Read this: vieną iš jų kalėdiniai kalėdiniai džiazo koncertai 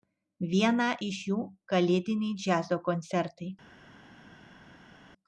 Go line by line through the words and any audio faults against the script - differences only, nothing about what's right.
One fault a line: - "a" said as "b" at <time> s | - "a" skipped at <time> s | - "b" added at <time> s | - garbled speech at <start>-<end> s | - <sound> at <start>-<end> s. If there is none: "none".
- "kalėdiniai" skipped at 2.4 s